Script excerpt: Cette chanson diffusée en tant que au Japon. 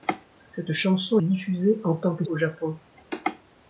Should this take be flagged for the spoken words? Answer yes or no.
no